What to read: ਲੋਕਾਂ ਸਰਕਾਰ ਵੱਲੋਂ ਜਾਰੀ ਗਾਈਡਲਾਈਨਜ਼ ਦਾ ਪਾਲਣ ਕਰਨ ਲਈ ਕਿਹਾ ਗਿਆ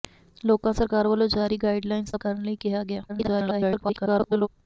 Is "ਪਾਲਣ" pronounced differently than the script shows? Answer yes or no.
yes